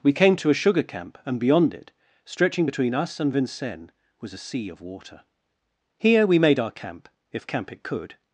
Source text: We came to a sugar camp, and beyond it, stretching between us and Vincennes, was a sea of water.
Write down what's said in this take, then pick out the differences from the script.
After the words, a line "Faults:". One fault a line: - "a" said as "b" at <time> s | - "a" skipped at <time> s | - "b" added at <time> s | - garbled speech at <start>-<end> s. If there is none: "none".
We came to a sugar camp, and beyond it, stretching between us and Vincennes, was a sea of water. Here we made our camp, if camp it could
Faults:
- "Here we made our camp if camp it could" added at 6.0 s